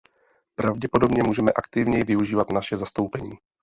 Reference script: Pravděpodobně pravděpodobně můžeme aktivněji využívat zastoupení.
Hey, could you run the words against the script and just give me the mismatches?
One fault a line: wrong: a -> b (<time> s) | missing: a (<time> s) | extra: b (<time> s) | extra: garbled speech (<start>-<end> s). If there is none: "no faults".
missing: pravděpodobně (1.2 s)
extra: naše (2.5 s)